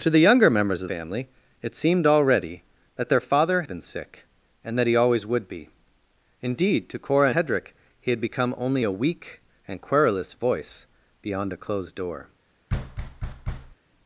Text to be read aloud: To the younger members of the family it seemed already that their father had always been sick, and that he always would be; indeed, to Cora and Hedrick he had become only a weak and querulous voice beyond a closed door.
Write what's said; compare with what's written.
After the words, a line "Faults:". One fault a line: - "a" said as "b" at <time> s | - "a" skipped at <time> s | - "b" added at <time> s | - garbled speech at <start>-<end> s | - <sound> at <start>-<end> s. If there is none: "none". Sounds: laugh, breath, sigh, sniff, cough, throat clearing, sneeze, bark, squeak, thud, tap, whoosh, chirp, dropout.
To the younger members of family it seemed already that their father been sick, and that he always would be; indeed, to Cora Hedrick he had become only a weak and querulous voice beyond a closed door.
Faults:
- "the" skipped at 0.9 s
- "had always" skipped at 3.6 s
- "and" skipped at 7.3 s
- thud at 12.7-13.8 s